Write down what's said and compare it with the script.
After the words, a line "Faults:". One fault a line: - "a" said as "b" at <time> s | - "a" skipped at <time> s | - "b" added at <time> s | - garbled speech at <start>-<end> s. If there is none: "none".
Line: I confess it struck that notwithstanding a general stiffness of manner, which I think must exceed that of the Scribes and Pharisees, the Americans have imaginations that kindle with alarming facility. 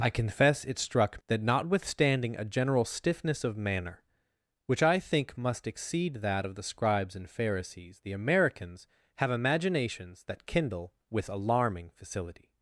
I confess it struck that notwithstanding a general stiffness of manner, which I think must exceed that of the Scribes and Pharisees, the Americans have imaginations that kindle with alarming facility.
Faults:
none